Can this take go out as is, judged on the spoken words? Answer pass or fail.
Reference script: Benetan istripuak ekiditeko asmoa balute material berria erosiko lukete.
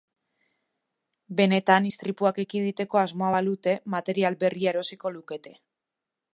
pass